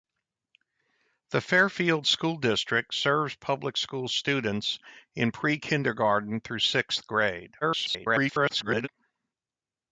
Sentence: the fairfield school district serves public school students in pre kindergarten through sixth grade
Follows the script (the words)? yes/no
no